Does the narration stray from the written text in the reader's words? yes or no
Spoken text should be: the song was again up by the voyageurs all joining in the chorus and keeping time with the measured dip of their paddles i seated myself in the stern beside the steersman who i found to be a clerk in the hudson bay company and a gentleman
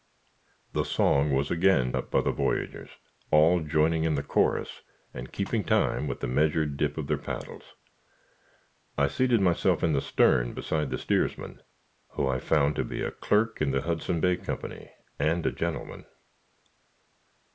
no